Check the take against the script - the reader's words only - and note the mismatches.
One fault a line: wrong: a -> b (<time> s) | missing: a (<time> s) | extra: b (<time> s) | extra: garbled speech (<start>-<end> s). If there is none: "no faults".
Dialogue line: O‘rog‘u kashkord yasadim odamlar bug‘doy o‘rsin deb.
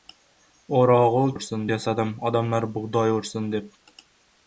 wrong: kashkord -> o‘rsin (1.4 s)